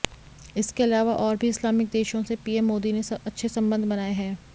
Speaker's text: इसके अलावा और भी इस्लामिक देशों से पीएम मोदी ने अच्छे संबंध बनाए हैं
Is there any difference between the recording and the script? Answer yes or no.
no